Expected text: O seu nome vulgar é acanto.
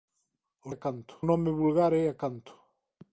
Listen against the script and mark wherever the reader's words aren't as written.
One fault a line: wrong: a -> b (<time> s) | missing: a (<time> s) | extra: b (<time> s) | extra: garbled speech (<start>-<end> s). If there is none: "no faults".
wrong: seu -> acanto (0.7 s)